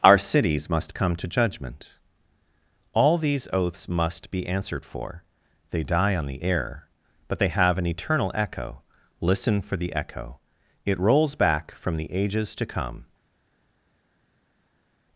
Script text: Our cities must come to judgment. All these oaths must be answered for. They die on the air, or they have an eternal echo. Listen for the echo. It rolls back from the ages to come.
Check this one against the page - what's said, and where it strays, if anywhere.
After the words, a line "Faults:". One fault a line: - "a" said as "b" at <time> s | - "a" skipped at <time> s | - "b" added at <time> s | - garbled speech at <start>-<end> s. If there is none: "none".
Our cities must come to judgment. All these oaths must be answered for. They die on the air, but they have an eternal echo. Listen for the echo. It rolls back from the ages to come.
Faults:
- "or" said as "but" at 7.3 s